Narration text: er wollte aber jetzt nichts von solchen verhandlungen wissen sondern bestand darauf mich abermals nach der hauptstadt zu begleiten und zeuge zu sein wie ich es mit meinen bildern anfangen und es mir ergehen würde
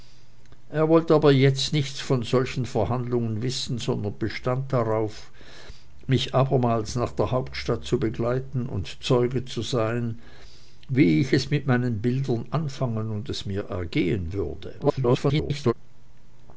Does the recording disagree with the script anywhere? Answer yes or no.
yes